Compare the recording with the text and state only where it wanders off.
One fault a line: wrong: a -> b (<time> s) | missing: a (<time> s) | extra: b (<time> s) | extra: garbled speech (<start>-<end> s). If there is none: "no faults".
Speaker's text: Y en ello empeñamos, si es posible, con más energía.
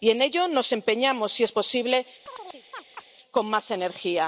extra: nos (0.5 s)